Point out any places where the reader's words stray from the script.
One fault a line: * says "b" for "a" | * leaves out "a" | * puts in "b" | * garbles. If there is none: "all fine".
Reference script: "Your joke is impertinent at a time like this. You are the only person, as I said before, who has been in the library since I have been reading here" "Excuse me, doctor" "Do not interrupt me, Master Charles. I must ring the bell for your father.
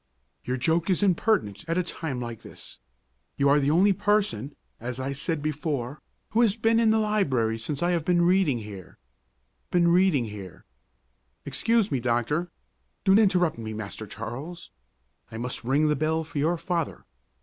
* puts in "been reading here"
* leaves out "not"